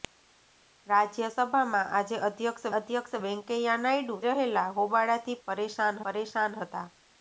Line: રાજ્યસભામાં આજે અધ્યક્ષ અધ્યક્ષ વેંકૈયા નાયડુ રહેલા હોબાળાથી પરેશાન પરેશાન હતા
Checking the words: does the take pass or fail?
pass